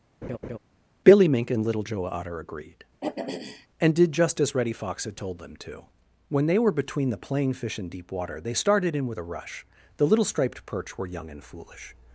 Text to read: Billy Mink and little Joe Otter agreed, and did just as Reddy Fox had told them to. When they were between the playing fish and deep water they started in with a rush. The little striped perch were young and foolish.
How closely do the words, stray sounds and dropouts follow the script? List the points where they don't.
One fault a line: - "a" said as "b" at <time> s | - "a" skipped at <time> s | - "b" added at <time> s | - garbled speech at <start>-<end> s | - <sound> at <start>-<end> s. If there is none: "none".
- laugh at 0.2-0.6 s
- throat clearing at 3.0-3.7 s